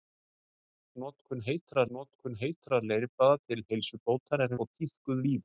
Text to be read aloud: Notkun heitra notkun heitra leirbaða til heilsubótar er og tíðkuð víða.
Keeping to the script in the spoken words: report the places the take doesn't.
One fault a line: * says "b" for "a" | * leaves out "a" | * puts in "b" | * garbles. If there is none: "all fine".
all fine